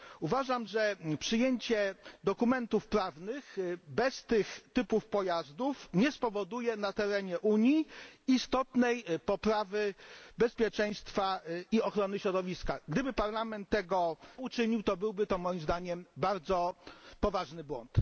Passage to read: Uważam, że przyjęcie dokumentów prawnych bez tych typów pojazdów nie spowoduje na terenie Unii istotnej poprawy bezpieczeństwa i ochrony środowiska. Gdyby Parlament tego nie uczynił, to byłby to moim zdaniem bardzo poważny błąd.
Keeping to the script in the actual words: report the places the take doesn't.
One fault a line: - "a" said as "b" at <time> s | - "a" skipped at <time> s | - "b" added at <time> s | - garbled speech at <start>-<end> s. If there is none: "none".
- "nie" skipped at 14.2 s